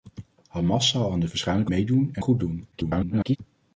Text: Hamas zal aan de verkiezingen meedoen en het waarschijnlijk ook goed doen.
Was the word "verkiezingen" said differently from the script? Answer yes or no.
yes